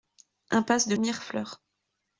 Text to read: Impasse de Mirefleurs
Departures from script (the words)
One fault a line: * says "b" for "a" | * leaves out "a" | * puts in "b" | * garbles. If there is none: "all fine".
all fine